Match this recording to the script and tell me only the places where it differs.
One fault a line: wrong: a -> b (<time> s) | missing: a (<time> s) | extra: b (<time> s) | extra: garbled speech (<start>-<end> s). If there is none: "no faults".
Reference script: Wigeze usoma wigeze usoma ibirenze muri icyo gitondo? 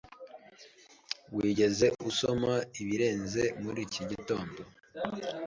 missing: wigeze usoma (2.5 s)
wrong: icyo -> iki (3.9 s)